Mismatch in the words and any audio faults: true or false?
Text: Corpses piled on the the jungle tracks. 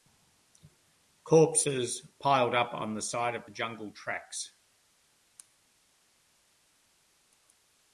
true